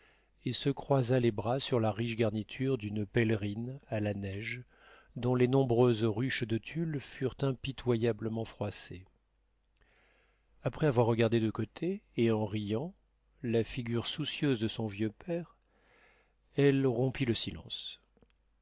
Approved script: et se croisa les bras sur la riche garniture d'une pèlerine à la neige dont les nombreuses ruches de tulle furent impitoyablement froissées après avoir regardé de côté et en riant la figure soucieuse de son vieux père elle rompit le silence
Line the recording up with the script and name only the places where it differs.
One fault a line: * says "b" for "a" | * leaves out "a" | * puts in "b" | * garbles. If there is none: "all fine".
all fine